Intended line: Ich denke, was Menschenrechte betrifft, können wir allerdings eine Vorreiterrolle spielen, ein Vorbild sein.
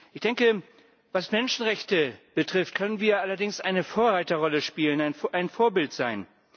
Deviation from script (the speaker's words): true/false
false